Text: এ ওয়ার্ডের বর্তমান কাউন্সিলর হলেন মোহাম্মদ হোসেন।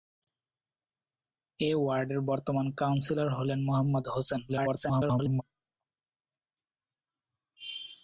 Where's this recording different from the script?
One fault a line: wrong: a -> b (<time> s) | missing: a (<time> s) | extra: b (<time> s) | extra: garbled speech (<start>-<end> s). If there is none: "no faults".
extra: garbled speech (4.5-5.4 s)